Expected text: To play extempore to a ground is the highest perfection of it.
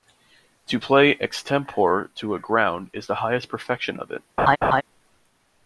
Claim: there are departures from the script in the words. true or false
false